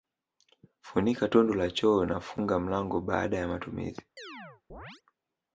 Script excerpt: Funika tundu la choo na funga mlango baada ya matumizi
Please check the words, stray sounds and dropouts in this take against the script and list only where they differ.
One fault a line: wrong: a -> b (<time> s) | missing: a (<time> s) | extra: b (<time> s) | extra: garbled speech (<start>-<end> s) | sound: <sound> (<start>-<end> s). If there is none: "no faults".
sound: chirp (4.2-5.0 s)